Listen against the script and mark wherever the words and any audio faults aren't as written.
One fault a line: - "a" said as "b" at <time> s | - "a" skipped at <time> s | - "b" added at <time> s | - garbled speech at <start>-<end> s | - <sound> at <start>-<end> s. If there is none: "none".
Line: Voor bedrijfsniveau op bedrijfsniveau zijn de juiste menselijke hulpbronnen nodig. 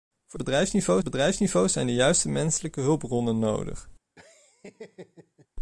- laugh at 4.2-5.5 s